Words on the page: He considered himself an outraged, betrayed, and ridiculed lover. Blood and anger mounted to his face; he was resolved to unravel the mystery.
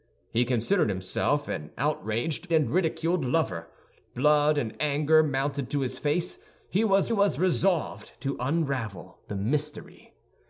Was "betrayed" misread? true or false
true